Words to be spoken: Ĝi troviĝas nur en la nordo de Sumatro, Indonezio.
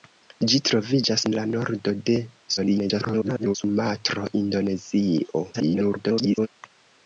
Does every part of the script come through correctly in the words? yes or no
no